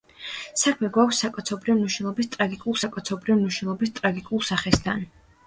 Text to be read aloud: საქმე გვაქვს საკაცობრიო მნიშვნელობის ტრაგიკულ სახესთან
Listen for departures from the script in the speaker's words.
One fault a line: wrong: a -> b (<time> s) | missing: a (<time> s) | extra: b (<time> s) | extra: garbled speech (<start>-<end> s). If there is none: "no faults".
extra: საკაცობრიო მნიშვნელობის ტრაგიკულ (2.8 s)